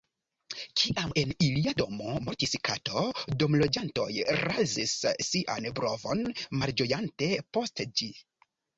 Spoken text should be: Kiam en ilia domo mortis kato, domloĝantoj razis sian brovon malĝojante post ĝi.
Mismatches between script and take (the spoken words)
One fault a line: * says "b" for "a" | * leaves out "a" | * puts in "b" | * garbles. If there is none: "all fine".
all fine